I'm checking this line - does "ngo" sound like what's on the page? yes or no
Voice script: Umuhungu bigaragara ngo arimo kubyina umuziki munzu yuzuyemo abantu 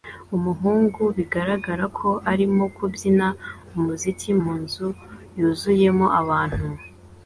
no